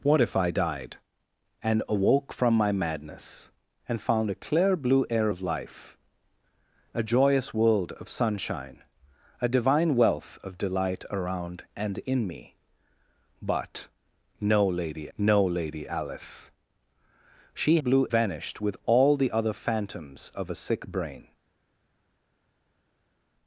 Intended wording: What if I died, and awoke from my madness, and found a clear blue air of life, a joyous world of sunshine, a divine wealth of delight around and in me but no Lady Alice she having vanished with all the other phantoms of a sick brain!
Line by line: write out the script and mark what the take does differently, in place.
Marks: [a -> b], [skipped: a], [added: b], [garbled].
What if I died, and awoke from my madness, and found a clear blue air of life, a joyous world of sunshine, a divine wealth of delight around and in me but no Lady [added: no Lady] Alice she [having -> blue] vanished with all the other phantoms of a sick brain!